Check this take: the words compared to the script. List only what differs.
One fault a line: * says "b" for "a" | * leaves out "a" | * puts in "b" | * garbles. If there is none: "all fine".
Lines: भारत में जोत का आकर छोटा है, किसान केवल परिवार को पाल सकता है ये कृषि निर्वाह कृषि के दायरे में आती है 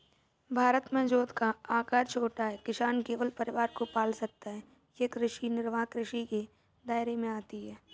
all fine